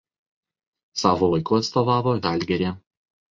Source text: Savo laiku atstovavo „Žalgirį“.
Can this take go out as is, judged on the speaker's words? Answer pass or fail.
pass